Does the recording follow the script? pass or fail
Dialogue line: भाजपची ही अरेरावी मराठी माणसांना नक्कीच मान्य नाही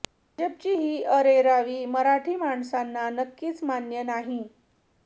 pass